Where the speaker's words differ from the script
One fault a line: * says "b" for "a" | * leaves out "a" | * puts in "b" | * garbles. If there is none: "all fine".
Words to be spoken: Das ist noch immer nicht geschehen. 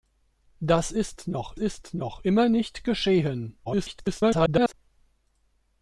* puts in "ist noch"
* garbles